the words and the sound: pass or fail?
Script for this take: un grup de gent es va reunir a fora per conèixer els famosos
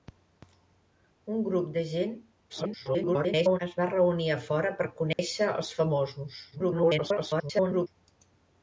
fail